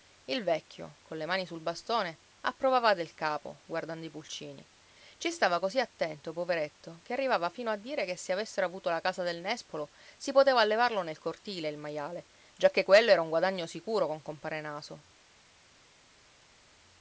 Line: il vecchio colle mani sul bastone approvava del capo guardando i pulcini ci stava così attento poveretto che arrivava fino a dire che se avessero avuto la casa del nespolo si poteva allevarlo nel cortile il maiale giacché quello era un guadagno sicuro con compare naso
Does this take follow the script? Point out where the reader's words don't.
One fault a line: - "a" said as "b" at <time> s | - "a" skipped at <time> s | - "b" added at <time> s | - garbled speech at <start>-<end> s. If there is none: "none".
none